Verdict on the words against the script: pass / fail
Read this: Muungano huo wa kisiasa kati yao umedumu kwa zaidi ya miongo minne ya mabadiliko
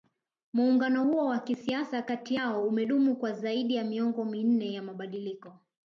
pass